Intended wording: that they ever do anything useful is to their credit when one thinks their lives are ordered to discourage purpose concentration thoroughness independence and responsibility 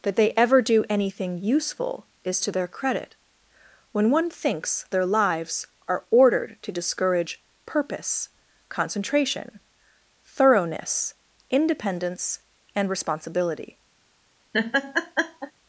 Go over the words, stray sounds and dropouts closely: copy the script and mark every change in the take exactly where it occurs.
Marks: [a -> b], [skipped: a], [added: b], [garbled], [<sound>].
that they ever do anything useful is to their credit when one thinks their lives are ordered to discourage purpose concentration thoroughness independence and responsibility [laugh]